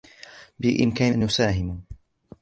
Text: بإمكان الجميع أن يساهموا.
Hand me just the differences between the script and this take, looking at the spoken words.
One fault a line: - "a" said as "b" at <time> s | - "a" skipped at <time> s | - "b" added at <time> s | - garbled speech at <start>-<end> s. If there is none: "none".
- "الجميع" skipped at 1.1 s